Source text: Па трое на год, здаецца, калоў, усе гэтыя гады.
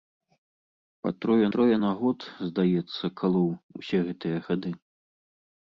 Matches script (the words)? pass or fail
fail